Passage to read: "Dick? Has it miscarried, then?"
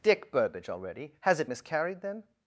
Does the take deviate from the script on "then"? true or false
false